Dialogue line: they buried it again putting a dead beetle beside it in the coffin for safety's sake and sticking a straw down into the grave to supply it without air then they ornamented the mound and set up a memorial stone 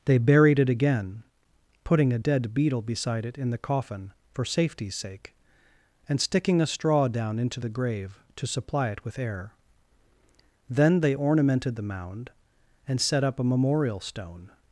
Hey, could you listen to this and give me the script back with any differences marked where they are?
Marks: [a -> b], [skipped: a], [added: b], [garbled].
they buried it again putting a dead beetle beside it in the coffin for safety's sake and sticking a straw down into the grave to supply it [without -> with] air then they ornamented the mound and set up a memorial stone